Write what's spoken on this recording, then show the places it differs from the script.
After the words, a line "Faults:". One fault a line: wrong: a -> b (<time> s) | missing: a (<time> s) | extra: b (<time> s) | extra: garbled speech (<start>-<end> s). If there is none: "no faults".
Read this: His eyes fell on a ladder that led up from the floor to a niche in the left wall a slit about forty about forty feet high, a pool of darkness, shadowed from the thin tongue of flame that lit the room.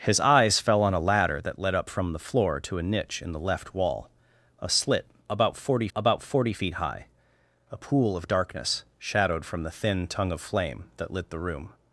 His eyes fell on a ladder that led up from the floor to a niche in the left wall a slit about forty about forty feet high, a pool of darkness, shadowed from the thin tongue of flame that lit the room.
Faults:
no faults